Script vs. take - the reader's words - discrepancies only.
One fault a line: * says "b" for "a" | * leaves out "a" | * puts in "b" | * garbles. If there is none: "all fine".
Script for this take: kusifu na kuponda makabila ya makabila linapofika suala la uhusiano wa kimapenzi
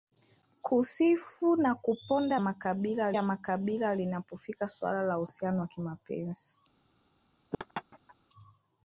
all fine